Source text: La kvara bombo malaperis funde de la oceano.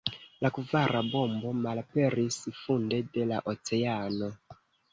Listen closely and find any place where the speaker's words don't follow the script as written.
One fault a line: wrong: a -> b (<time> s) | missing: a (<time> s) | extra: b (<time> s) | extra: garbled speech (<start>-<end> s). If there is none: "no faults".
no faults